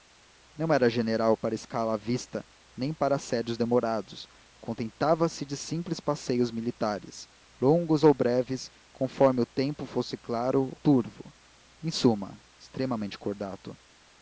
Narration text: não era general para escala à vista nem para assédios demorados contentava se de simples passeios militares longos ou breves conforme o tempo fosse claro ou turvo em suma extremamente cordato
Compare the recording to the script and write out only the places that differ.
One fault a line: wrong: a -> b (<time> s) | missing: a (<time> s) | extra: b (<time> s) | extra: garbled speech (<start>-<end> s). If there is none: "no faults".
missing: ou (10.8 s)